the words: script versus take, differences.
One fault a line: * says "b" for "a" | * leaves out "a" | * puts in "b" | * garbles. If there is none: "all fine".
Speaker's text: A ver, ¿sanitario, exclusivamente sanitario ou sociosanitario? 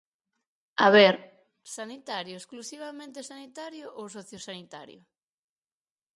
all fine